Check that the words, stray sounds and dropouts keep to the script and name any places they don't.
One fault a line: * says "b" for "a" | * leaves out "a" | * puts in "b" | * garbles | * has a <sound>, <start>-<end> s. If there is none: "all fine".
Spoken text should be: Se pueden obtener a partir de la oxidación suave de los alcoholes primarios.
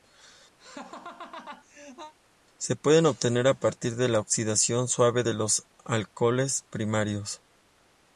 * has a laugh, 0.6-2.1 s